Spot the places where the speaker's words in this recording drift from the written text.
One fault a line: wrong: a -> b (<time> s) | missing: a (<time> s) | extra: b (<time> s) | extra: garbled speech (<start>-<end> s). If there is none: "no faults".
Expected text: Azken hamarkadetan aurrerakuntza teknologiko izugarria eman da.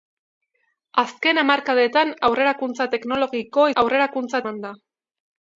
wrong: izugarria -> aurrerakuntza (3.8 s)